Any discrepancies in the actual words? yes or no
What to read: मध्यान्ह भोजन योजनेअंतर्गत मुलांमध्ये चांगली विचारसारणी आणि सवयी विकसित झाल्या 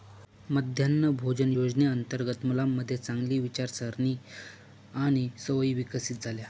no